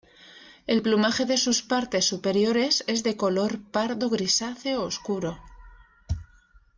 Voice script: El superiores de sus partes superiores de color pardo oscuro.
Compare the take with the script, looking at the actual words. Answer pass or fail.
fail